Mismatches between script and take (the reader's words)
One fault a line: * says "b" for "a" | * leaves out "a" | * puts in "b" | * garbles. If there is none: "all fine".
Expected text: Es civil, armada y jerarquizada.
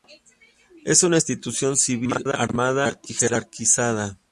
* puts in "una institución"